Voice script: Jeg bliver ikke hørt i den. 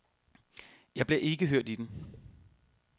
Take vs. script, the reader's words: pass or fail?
pass